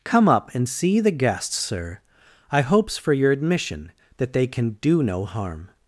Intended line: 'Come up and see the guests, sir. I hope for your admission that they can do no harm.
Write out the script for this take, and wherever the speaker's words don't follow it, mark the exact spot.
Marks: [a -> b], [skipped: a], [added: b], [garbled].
'Come up and see the guests, sir. I [hope -> hopes] for your admission that they can do no harm.